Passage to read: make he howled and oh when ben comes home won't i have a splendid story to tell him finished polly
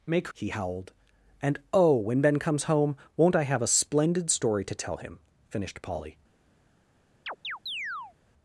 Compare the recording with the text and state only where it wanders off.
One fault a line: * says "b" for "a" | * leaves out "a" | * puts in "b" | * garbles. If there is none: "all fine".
all fine